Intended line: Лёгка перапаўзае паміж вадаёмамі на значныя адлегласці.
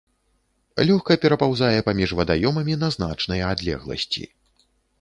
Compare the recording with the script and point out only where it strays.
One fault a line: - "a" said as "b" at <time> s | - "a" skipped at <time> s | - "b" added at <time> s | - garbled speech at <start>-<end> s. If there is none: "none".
none